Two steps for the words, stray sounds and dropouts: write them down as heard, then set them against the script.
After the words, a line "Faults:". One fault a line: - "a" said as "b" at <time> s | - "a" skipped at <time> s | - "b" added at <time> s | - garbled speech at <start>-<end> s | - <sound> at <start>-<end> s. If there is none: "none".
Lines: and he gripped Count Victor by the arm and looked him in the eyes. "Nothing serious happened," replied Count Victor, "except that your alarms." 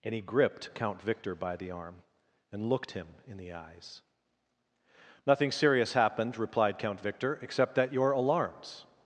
and he gripped Count Victor by the arm and looked him in the eyes. "Nothing serious happened," replied Count Victor, "except that your alarms."
Faults:
none